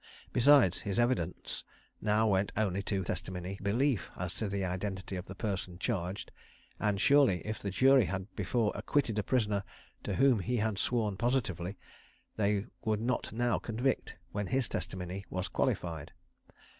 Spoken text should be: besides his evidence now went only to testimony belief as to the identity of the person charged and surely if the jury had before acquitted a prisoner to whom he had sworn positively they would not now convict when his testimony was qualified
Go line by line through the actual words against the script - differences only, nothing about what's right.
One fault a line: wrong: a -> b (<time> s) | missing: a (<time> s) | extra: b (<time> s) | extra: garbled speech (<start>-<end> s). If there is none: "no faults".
no faults